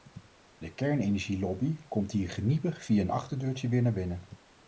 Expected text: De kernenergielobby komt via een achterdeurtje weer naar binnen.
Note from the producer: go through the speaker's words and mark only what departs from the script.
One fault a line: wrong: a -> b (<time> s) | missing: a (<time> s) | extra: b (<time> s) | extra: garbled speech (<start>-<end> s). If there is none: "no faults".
extra: hier geniepig (2.1 s)